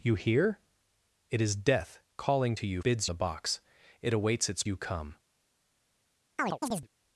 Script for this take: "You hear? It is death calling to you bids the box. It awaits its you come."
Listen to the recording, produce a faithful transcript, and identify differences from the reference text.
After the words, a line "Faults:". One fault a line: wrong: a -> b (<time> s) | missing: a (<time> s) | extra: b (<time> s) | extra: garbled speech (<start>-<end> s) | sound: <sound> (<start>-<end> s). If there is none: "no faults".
"You hear? It is death calling to you bids the box. It awaits its you come."
Faults:
sound: chirp (6.4-6.9 s)